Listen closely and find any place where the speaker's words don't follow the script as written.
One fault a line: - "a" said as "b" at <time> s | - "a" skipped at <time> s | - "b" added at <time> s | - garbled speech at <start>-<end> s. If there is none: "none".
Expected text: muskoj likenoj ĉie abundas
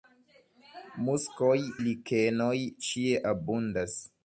none